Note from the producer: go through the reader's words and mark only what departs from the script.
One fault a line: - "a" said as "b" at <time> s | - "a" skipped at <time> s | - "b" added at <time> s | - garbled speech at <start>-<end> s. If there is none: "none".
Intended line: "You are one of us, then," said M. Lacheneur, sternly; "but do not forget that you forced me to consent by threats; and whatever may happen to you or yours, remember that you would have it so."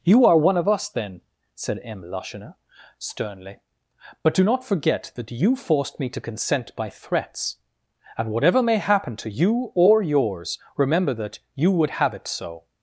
none